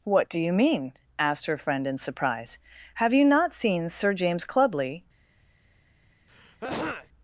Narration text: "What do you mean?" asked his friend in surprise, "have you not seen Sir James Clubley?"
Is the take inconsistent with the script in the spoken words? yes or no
yes